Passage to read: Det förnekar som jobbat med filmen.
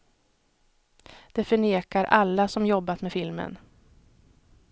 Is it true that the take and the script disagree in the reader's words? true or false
true